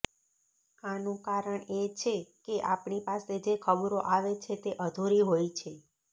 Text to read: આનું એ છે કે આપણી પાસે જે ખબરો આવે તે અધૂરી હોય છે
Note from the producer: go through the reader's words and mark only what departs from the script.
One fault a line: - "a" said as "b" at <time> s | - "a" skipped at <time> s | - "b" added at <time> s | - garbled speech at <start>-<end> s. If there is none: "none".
- "કારણ" added at 1.2 s
- "છે" added at 4.4 s